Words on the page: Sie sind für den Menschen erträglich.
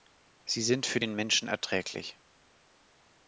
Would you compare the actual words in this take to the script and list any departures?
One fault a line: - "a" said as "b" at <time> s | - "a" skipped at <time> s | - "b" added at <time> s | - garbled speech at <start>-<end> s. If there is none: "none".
none